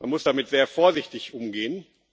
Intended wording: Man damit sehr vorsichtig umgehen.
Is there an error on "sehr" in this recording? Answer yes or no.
no